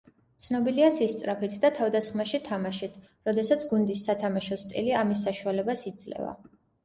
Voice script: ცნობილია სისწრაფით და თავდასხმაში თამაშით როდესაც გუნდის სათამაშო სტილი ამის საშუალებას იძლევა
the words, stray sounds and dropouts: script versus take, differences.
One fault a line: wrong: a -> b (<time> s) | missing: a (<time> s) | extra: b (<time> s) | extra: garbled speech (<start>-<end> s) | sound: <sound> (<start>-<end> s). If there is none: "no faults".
no faults